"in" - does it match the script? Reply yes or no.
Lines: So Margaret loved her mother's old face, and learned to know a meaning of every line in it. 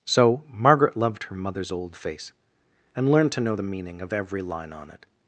no